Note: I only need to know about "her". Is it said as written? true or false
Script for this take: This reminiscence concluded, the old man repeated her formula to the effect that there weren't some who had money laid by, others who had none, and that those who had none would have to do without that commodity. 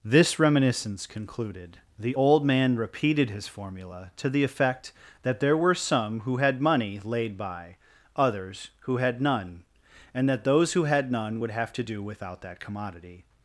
false